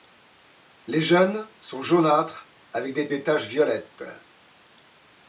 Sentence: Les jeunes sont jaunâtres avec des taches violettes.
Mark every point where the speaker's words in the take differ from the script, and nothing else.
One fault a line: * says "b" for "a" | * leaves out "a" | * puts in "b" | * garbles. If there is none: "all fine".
* puts in "des"